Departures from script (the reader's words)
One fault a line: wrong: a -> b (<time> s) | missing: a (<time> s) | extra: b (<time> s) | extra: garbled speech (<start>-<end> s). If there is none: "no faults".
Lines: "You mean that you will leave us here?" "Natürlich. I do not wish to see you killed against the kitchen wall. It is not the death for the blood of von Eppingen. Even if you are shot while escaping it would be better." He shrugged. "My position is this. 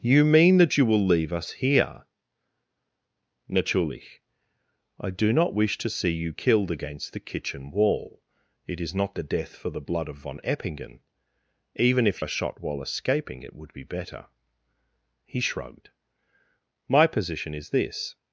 missing: you (12.2 s)